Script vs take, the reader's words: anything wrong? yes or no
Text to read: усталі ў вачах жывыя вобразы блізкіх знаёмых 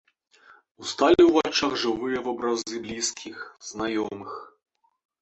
no